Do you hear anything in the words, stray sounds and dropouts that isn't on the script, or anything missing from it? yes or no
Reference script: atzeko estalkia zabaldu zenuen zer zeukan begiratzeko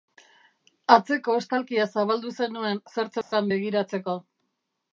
yes